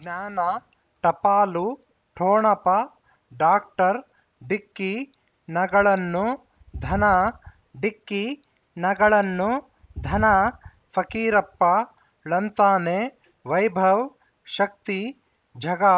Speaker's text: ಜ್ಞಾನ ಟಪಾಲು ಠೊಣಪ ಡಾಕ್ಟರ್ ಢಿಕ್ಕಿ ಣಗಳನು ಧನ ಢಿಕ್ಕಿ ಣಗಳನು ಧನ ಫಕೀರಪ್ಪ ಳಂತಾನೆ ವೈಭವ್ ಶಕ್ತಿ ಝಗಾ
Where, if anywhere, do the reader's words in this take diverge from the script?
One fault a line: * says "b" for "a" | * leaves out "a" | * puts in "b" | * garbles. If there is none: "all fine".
all fine